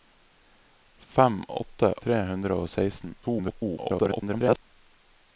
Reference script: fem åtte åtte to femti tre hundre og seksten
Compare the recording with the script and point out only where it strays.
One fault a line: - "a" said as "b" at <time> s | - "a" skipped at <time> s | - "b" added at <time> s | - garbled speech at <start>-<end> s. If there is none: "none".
- "åtte to femti" skipped at 1.9 s
- garbled speech at 3.2-4.6 s